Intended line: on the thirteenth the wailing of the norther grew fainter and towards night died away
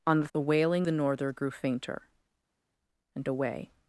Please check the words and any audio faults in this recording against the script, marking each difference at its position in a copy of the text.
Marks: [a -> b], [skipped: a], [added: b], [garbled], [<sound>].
on the [skipped: thirteenth] the wailing [skipped: of] the norther grew fainter and [skipped: towards night died] away